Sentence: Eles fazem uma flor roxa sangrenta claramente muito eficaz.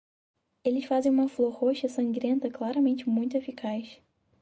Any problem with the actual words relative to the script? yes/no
no